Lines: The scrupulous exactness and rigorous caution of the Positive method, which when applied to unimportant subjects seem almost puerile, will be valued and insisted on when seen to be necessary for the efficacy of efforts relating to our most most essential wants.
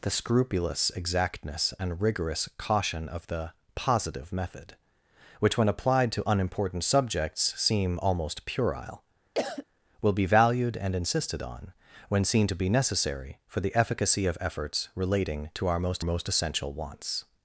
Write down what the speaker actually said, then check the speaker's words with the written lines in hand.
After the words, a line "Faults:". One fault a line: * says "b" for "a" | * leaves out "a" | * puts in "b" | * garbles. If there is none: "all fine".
The scrupulous exactness and rigorous caution of the Positive method, which when applied to unimportant subjects seem almost puerile, will be valued and insisted on when seen to be necessary for the efficacy of efforts relating to our most most essential wants.
Faults:
all fine